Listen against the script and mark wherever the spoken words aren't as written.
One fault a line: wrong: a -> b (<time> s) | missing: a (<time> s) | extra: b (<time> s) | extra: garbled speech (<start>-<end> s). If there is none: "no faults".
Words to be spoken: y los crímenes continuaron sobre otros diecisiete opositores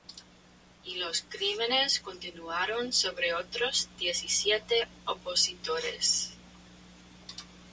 no faults